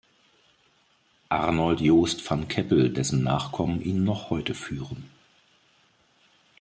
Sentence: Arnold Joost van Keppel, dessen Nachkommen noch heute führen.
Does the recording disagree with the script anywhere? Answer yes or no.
yes